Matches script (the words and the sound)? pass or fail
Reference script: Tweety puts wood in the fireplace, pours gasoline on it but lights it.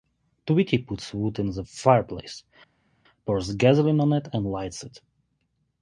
fail